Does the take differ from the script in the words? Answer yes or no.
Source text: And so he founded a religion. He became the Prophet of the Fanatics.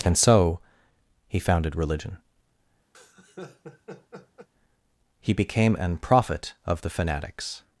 yes